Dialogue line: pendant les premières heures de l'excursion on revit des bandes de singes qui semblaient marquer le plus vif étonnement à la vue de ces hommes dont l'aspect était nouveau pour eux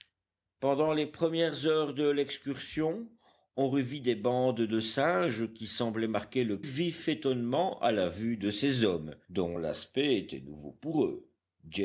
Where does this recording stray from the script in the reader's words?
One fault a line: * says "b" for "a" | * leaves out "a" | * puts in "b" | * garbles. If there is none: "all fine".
* leaves out "plus"